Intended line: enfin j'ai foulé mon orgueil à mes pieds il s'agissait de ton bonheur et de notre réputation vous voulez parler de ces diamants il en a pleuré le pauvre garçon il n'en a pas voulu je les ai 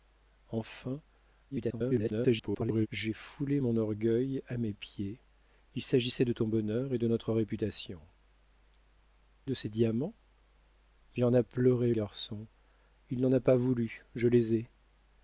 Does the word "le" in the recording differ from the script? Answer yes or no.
yes